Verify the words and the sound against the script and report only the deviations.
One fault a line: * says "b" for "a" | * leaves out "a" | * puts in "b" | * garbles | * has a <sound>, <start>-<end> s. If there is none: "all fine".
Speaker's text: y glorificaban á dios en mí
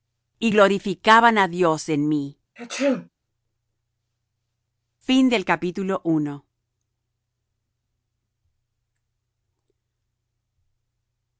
* has a sneeze, 2.6-3.1 s